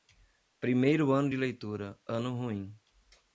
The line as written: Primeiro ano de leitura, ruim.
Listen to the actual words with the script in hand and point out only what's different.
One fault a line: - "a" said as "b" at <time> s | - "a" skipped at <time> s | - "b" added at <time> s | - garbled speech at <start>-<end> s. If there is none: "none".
- "ano" added at 2.1 s